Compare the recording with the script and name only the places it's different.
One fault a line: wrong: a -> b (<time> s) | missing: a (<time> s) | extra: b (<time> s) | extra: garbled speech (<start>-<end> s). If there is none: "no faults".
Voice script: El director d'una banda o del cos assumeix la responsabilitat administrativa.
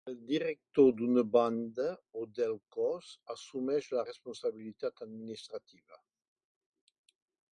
no faults